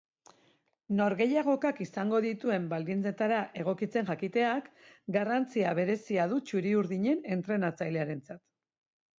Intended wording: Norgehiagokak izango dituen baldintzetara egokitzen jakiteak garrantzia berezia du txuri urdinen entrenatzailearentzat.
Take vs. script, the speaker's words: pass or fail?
pass